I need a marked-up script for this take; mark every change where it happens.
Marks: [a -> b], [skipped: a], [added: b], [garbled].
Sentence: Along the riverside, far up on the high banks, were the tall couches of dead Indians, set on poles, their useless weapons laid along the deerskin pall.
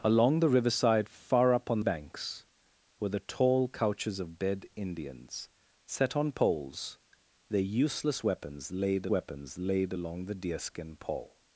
Along the riverside, far up on [skipped: the high] banks, were the tall couches of dead Indians, set on poles, their useless weapons laid [added: weapons laid] along the deerskin pall.